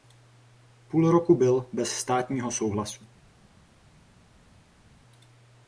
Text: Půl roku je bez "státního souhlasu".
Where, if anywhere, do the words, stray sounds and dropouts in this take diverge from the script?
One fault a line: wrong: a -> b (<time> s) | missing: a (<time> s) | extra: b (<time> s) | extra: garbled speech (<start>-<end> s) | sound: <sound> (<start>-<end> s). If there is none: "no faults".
wrong: je -> byl (1.4 s)